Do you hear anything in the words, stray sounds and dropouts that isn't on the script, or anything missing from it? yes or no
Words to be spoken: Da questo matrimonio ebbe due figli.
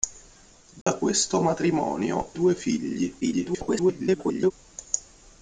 yes